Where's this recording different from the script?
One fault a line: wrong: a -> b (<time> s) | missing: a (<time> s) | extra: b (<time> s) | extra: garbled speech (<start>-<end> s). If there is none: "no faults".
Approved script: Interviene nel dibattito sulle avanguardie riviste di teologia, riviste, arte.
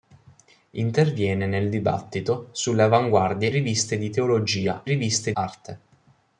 no faults